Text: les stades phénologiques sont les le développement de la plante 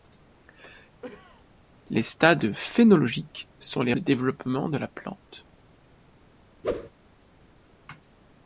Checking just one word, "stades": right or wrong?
right